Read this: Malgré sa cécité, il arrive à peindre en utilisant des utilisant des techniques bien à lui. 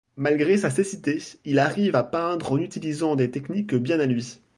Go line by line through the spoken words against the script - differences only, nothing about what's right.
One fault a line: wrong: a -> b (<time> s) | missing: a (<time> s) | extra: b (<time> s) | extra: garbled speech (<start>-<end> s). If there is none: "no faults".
missing: utilisant des (3.3 s)